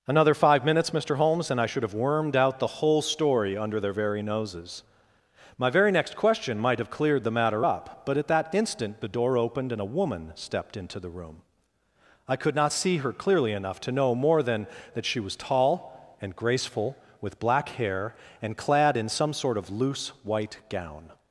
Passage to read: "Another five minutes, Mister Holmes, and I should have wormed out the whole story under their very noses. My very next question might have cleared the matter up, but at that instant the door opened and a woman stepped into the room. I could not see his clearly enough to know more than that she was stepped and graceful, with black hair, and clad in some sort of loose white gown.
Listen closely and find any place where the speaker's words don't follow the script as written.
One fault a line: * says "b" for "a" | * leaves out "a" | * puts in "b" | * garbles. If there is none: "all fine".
* says "her" for "his"
* says "tall" for "stepped"